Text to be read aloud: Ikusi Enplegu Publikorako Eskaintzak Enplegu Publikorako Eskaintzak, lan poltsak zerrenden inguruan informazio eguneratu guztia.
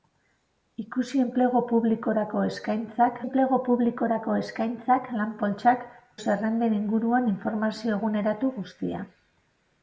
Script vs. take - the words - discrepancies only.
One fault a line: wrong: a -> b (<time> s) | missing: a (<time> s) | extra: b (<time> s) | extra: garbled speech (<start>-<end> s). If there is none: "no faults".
no faults